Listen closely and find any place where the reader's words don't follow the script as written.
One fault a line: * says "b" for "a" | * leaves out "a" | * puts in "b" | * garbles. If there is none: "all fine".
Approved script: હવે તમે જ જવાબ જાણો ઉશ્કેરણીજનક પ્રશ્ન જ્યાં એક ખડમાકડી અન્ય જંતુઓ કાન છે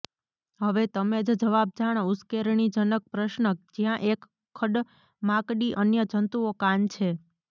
all fine